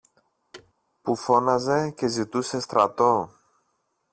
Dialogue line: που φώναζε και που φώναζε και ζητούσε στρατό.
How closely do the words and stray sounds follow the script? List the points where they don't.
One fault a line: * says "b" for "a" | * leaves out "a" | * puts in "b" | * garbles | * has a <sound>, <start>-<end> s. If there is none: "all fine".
* has a thud, 0.5-0.7 s
* leaves out "που φώναζε και"